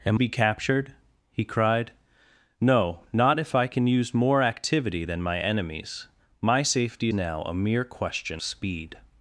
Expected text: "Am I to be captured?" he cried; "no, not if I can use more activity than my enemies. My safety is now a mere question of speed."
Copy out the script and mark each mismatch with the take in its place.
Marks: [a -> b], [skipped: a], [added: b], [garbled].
"Am [skipped: I to] be captured?" he cried; "no, not if I can use more activity than my enemies. My safety [skipped: is] now a mere question [skipped: of] speed."